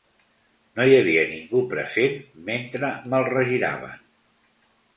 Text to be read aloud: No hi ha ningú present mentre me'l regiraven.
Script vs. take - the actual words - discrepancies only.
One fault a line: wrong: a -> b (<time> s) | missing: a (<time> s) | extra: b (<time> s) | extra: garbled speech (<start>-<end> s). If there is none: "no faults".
wrong: ha -> havia (1.0 s)